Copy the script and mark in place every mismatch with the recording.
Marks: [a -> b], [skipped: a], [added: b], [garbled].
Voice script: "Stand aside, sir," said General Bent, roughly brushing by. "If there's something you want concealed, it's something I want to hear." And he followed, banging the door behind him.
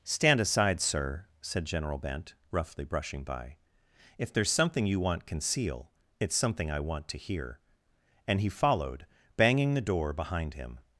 "Stand aside, sir," said General Bent, roughly brushing by. "If there's something you want [concealed, -> conceal] it's something I want to hear." And he followed, banging the door behind him.